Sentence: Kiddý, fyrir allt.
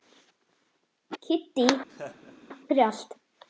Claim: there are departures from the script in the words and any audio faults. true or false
true